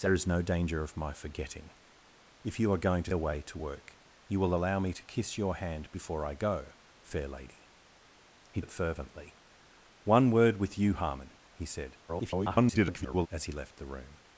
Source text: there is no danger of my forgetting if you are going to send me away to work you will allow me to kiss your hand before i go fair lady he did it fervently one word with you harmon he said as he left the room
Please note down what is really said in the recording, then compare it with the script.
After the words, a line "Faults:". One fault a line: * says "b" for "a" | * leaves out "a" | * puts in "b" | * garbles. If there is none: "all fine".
there is no danger of my forgetting if you are going to away to work you will allow me to kiss your hand before i go fair lady he it fervently one word with you harmon he said [garbled] as he left the room
Faults:
* leaves out "send me"
* leaves out "did"
* garbles